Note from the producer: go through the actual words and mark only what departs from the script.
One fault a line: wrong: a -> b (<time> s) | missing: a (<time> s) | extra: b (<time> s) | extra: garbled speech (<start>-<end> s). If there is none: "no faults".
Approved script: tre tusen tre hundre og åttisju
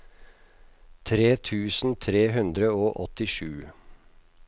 no faults